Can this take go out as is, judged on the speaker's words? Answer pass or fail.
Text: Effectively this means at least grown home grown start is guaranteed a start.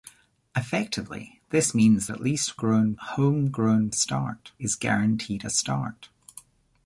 pass